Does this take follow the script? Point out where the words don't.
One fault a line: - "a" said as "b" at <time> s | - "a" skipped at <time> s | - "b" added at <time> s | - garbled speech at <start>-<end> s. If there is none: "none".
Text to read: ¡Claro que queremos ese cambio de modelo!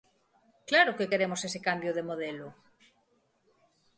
none